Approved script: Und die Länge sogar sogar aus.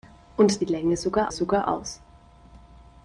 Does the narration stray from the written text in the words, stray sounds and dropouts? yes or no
no